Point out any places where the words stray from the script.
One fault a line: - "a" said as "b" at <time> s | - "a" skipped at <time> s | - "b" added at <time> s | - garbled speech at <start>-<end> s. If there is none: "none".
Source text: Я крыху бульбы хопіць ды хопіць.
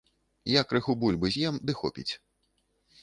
- "хопіць" said as "з'ем" at 1.3 s